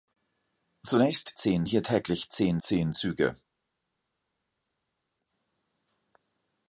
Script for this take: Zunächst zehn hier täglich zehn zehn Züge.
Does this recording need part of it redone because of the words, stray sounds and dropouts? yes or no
no